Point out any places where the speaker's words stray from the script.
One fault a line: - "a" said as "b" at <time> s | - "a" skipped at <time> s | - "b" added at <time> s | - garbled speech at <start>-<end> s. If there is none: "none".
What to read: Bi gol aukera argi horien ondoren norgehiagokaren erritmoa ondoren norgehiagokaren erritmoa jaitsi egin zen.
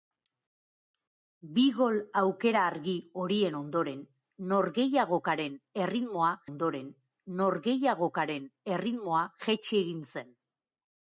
none